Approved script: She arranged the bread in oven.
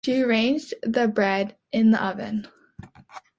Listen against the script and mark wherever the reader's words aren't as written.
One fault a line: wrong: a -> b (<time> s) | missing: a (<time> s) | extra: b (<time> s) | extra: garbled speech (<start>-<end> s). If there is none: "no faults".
extra: the (1.9 s)